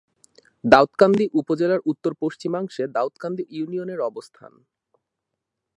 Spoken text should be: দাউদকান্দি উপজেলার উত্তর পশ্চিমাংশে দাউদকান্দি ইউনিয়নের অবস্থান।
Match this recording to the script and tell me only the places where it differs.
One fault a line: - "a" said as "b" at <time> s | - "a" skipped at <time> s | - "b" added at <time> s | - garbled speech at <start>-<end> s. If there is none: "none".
none